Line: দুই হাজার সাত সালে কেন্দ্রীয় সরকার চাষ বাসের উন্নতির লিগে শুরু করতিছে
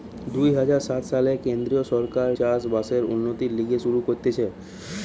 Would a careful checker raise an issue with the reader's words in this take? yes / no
no